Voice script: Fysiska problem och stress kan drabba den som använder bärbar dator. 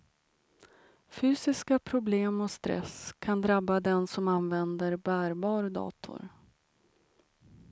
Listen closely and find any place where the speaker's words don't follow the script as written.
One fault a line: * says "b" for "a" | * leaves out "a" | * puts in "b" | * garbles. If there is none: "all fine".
all fine